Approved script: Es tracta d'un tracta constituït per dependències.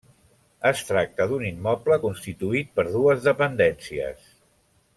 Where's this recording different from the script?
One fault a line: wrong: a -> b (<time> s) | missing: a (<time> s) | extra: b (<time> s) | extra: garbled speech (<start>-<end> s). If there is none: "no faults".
wrong: tracta -> immoble (1.5 s)
extra: dues (3.0 s)